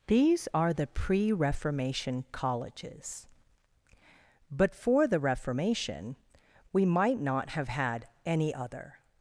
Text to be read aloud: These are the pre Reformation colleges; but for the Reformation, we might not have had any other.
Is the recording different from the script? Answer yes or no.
no